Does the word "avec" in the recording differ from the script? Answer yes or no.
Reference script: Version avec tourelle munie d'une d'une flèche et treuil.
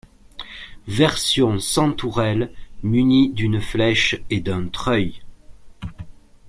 yes